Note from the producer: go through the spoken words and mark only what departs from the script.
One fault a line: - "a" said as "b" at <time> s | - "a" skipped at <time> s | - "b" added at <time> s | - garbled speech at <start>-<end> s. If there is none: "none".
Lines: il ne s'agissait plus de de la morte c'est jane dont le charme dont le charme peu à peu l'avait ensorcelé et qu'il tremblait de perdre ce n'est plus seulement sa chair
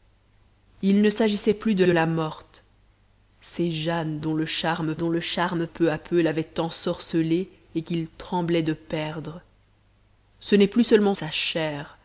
none